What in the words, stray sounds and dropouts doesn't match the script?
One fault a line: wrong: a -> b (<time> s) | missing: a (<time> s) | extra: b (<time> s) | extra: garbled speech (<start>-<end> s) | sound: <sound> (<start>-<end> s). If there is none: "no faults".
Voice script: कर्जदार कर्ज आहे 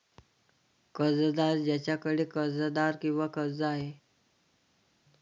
extra: ज्याच्याकडे कर्जदार किंवा (1.6 s)